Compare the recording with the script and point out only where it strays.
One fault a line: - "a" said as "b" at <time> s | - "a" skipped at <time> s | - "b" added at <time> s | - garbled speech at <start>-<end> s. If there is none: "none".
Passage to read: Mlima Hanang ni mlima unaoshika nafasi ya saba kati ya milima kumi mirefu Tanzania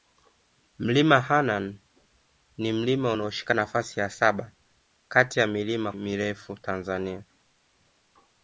- "kumi" skipped at 5.9 s